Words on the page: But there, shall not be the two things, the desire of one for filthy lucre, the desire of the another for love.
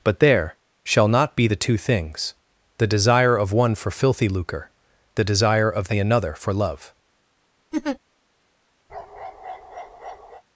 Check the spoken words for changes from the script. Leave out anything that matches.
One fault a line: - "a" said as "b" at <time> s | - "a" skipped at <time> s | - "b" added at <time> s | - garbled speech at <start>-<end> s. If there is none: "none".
none